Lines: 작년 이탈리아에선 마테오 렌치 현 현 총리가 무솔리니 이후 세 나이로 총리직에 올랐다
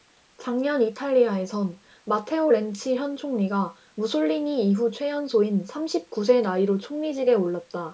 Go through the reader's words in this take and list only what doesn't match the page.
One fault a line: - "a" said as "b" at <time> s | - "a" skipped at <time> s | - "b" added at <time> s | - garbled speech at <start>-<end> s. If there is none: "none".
- "현" skipped at 3.2 s
- "최연소인 삼십 구" added at 4.9 s